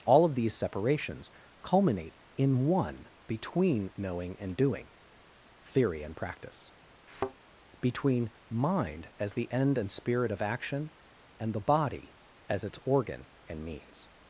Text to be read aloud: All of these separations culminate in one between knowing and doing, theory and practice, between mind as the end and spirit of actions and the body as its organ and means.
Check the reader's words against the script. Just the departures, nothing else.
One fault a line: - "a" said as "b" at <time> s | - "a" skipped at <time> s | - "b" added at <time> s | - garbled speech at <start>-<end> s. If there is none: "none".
- "actions" said as "action" at 10.4 s